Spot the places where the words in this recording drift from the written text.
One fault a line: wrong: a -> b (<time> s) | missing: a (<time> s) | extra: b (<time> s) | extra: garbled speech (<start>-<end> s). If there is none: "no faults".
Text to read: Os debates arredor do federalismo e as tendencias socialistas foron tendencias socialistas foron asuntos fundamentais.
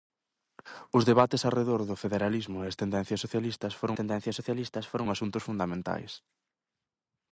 no faults